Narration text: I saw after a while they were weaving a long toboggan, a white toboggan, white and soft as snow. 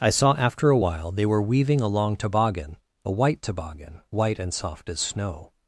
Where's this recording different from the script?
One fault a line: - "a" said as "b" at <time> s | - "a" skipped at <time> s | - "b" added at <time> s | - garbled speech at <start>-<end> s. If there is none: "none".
none